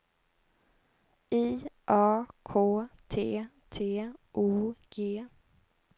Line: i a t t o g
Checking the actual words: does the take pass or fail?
fail